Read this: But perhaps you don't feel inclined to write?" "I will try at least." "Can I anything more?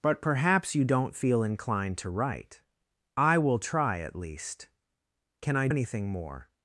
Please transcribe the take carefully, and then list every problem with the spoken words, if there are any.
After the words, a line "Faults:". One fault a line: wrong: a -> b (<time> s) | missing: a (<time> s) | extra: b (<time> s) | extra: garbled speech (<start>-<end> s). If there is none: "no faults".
But perhaps you don't feel inclined to write?" "I will try at least." "Can I anything more?
Faults:
no faults